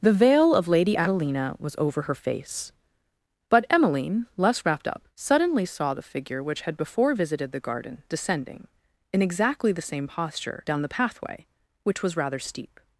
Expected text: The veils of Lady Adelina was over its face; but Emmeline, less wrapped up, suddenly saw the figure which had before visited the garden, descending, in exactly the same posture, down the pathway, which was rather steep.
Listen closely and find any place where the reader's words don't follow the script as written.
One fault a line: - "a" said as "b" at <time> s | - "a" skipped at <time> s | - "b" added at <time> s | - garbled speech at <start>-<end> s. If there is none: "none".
- "veils" said as "veil" at 0.1 s
- "its" said as "her" at 2.0 s